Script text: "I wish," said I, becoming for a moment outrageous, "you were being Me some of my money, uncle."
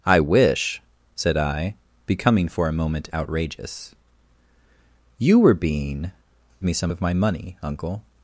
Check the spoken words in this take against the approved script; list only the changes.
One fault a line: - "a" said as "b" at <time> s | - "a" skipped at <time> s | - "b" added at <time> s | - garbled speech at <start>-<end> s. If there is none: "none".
none